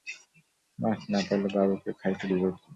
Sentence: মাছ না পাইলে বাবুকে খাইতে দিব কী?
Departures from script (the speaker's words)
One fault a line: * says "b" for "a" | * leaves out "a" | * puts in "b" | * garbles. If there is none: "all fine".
all fine